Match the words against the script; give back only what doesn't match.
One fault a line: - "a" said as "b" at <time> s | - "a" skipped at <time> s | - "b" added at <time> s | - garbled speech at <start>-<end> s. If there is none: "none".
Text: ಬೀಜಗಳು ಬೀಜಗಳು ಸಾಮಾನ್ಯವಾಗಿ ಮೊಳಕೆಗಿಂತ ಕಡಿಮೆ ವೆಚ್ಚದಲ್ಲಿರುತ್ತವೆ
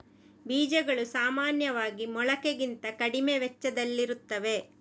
- "ಬೀಜಗಳು" skipped at 1.1 s